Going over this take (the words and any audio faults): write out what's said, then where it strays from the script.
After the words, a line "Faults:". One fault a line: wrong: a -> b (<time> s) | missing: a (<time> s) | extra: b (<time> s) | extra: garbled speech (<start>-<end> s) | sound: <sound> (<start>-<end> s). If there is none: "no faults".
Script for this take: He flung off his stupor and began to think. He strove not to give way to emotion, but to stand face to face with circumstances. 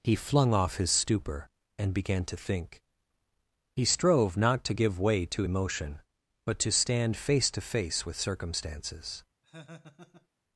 He flung off his stupor and began to think. He strove not to give way to emotion, but to stand face to face with circumstances.
Faults:
sound: laugh (9.4-10.3 s)